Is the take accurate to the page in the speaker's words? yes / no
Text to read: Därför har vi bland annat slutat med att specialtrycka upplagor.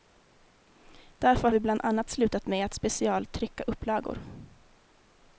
no